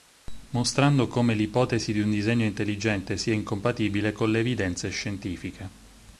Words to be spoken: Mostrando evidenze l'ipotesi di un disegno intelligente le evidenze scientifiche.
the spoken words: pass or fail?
fail